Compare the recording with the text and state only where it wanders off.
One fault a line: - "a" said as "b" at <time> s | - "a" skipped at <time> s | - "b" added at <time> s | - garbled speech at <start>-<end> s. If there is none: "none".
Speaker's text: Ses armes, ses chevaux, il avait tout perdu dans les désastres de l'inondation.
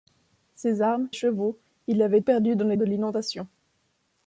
- "ses" skipped at 1.1 s
- "tout" skipped at 2.2 s
- "désastres" skipped at 2.8 s